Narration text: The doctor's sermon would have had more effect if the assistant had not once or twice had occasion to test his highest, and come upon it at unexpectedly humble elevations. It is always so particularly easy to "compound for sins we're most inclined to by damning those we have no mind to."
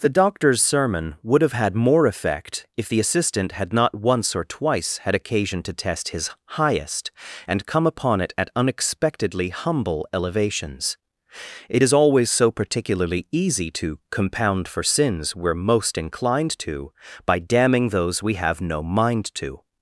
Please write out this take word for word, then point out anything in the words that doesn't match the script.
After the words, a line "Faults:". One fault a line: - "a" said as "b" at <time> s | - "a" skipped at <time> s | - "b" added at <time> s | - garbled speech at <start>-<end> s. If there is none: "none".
The doctor's sermon would have had more effect if the assistant had not once or twice had occasion to test his highest, and come upon it at unexpectedly humble elevations. It is always so particularly easy to "compound for sins we're most inclined to by damning those we have no mind to."
Faults:
none